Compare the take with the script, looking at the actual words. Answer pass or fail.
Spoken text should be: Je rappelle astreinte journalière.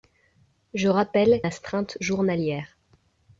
pass